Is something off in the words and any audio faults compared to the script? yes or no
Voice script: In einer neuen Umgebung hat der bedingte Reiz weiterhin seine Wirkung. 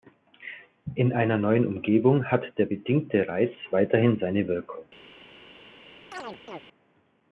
yes